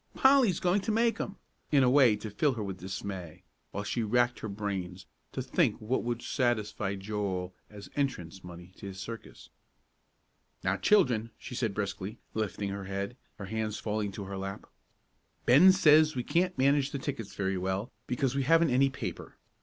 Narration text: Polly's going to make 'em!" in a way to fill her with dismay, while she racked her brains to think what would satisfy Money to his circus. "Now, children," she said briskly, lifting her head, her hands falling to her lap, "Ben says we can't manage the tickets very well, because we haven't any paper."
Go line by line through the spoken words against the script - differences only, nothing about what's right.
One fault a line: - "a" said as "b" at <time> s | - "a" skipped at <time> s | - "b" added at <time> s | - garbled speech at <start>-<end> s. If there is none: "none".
- "Joel as entrance" added at 7.0 s